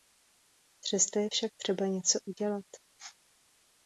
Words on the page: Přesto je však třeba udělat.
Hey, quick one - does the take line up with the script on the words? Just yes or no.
no